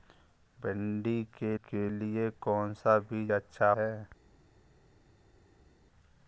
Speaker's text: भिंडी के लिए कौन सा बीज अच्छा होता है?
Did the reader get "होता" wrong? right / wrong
wrong